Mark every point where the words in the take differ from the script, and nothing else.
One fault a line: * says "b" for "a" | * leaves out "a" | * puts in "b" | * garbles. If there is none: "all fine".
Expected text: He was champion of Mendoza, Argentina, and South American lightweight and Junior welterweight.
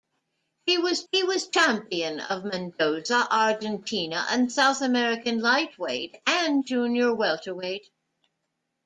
* puts in "he was"